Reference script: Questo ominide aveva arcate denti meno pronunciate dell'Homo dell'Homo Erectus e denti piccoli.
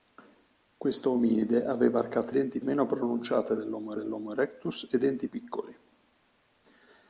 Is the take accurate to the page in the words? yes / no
yes